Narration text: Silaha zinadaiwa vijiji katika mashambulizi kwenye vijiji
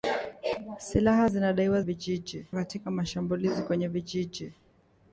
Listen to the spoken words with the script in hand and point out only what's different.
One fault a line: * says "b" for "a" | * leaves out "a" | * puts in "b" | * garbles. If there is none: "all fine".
all fine